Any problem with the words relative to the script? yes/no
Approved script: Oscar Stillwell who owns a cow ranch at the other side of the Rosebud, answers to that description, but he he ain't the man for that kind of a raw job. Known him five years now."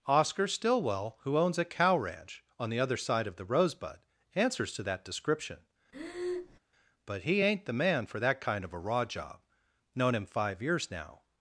yes